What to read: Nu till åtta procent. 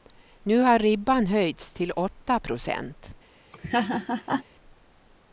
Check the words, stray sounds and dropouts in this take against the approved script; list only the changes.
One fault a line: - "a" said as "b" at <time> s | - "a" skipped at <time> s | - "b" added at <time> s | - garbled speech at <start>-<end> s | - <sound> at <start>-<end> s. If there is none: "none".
- "har ribban höjts" added at 0.6 s
- laugh at 3.5-4.4 s